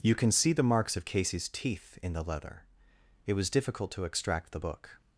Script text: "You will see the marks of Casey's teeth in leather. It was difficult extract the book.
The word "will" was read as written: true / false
false